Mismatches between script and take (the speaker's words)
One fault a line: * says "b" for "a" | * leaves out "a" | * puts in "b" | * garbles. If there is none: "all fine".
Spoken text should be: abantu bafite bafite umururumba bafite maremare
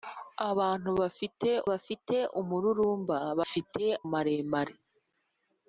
all fine